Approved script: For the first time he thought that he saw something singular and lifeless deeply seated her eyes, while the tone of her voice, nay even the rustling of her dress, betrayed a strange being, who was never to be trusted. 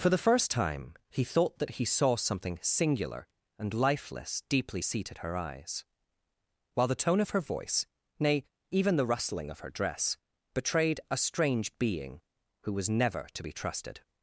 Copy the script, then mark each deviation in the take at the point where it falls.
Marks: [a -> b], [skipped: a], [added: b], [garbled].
For the first time he thought that he saw something singular and lifeless deeply seated her eyes, while the tone of her voice, nay even the rustling of her dress, betrayed a strange being, who was never to be trusted.